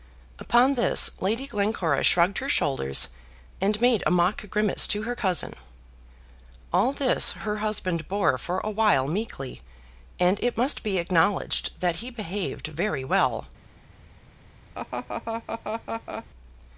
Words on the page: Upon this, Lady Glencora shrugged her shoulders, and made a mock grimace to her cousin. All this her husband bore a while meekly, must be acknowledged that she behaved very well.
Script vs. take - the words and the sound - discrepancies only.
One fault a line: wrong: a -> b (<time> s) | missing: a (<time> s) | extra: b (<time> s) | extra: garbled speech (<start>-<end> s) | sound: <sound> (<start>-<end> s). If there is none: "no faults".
extra: for (8.4 s)
extra: and it (10.2 s)
wrong: she -> he (12.0 s)
sound: laugh (14.7-16.3 s)